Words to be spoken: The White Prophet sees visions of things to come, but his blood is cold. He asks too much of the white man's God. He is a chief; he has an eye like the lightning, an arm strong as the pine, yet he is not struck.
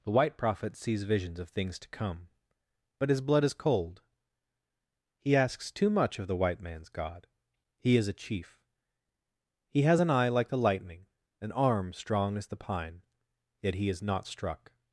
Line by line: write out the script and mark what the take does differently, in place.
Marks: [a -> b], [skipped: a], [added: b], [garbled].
The White Prophet sees visions of things to come, but his blood is cold. He asks too much of the white man's God. He is a chief; he has an eye like the lightning, an arm strong as the pine, yet he is not struck.